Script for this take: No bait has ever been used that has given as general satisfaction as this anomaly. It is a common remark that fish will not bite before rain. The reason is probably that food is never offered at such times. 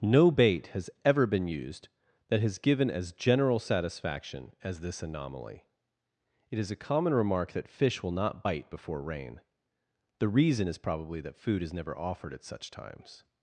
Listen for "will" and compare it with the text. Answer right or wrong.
right